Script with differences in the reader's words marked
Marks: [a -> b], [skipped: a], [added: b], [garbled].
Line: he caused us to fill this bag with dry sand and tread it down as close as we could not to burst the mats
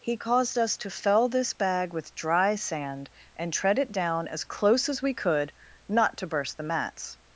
he caused us to [fill -> fell] this bag with dry sand and tread it down as close as we could not to burst the mats